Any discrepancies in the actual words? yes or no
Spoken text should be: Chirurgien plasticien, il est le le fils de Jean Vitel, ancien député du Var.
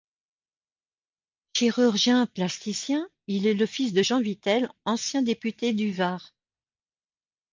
yes